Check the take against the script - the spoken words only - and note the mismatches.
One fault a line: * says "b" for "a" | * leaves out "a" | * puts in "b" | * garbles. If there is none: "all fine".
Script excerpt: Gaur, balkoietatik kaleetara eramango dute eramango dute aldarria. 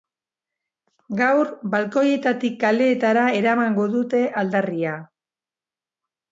* leaves out "eramango dute"